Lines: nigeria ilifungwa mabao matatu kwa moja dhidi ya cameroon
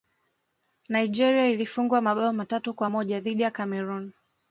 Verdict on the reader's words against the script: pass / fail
pass